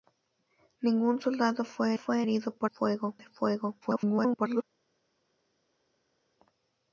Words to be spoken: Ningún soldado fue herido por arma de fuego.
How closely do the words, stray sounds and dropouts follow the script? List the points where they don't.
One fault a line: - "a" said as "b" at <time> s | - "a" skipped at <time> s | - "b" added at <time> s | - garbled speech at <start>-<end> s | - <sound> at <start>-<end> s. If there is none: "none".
- "fue" added at 1.9 s
- "arma" said as "fuego" at 2.7 s
- garbled speech at 3.8-4.6 s